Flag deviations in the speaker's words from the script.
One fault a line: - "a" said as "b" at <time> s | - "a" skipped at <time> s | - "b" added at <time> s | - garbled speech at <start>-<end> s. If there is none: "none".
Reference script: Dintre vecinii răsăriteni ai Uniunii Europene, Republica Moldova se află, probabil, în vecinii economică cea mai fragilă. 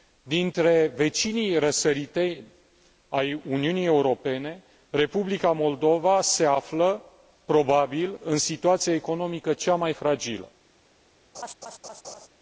- "vecinii" said as "situația" at 8.4 s